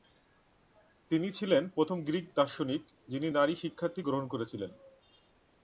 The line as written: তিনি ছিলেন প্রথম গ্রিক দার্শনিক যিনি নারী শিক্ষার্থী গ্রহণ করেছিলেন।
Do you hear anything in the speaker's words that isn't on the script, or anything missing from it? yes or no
no